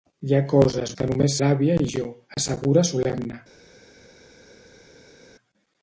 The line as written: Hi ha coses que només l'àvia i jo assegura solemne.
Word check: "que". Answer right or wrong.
right